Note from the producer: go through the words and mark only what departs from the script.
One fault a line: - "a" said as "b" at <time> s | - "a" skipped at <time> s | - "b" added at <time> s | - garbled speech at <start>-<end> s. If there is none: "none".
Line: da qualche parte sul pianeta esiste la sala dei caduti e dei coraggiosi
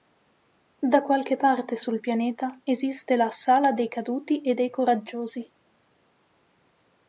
none